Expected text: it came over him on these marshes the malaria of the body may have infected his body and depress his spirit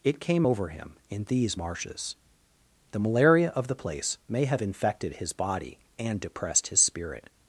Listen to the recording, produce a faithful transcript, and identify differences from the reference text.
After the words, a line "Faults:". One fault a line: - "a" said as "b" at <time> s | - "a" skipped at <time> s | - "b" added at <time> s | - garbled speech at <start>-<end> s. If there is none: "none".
it came over him in these marshes the malaria of the place may have infected his body and depressed his spirit
Faults:
- "on" said as "in" at 1.1 s
- "body" said as "place" at 3.8 s
- "depress" said as "depressed" at 6.2 s